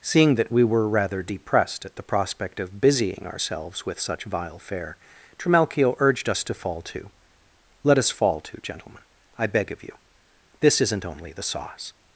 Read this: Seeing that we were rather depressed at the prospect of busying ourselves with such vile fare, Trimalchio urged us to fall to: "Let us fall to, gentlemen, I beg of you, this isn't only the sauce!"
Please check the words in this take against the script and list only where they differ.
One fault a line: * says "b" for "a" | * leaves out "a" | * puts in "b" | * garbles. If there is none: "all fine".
all fine